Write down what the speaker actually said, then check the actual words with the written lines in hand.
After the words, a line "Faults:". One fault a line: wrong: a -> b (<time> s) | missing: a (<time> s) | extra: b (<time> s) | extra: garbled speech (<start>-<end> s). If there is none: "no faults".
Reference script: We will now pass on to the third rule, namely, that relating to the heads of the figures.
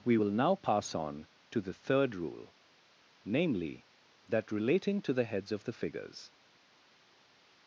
We will now pass on to the third rule, namely, that relating to the heads of the figures.
Faults:
no faults